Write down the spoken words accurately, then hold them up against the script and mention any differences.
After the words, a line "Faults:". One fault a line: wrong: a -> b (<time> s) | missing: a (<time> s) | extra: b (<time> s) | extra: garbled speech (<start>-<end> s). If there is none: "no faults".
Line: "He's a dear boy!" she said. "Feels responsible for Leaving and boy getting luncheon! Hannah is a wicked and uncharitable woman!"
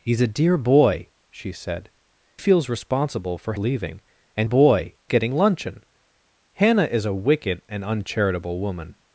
"He's a dear boy!" she said. "Feels responsible for Leaving and boy getting luncheon! Hannah is a wicked and uncharitable woman!"
Faults:
no faults